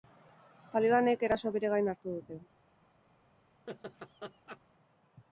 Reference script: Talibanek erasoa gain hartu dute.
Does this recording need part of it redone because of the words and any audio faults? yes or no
yes